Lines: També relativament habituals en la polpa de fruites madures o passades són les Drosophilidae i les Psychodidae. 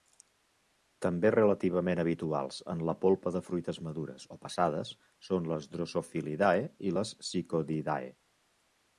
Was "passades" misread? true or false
false